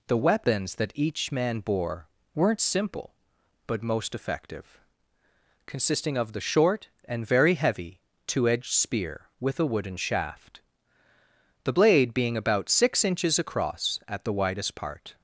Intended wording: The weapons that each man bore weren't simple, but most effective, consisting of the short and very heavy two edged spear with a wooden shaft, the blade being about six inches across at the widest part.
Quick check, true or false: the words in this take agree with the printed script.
true